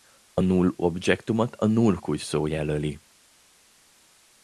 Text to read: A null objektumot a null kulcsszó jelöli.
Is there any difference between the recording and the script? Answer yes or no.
no